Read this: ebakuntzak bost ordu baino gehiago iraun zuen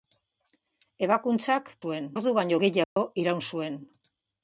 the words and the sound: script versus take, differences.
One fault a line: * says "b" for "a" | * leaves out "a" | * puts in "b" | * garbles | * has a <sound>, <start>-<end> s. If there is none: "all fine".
* says "zuen" for "bost"
* has a dropout, 2.8-3.0 s